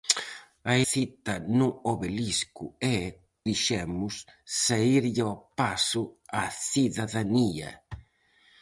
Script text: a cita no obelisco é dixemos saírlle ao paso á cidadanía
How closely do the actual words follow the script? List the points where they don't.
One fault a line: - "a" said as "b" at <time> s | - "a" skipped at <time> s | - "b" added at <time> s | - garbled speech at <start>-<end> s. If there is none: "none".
none